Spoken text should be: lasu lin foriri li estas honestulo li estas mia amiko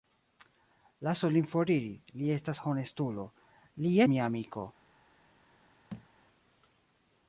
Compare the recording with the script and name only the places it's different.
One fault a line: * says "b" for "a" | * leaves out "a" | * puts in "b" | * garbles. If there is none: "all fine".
* leaves out "estas"